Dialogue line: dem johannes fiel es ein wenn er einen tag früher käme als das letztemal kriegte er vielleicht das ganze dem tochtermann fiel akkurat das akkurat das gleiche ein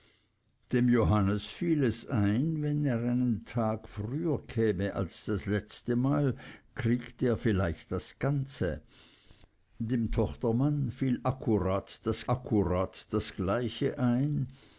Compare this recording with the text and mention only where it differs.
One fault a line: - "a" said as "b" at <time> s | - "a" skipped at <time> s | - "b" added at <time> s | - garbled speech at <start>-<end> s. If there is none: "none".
none